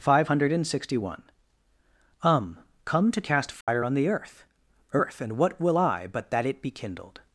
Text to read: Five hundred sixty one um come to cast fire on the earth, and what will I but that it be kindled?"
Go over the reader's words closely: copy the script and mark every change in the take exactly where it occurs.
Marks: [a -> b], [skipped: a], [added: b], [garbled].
Five hundred sixty one um come to cast fire on the earth, [added: earth] and what will I but that it be kindled?"